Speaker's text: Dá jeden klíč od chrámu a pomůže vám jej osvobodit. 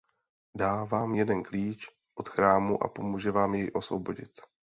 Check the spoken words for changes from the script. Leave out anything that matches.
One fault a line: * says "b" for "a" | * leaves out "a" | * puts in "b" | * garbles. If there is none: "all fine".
* puts in "vám"